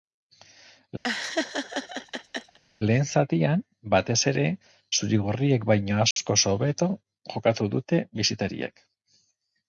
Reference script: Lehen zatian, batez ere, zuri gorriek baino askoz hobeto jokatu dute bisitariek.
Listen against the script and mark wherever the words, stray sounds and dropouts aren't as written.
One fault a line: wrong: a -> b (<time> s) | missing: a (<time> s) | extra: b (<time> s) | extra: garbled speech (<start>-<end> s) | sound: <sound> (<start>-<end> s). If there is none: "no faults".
sound: laugh (1.0-2.6 s)
sound: dropout (6.1-6.2 s)